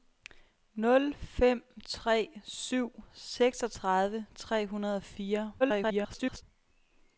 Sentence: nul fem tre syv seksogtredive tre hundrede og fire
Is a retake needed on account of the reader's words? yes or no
yes